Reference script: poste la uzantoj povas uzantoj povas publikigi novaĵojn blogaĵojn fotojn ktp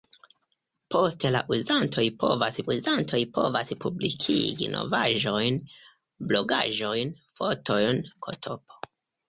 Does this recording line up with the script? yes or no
yes